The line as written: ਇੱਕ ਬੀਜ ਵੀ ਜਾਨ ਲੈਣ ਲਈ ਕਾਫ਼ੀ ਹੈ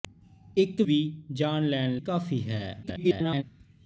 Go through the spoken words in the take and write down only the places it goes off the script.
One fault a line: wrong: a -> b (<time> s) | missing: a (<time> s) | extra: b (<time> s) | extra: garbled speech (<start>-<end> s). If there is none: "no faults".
missing: ਬੀਜ (0.8 s)
missing: ਲਈ (2.0 s)
extra: garbled speech (2.8-3.4 s)